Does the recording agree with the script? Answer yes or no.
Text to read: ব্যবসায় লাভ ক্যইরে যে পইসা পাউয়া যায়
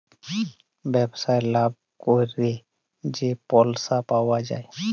yes